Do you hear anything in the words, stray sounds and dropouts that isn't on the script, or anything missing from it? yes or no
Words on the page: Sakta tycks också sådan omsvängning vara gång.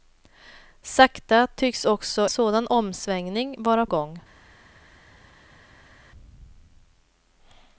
no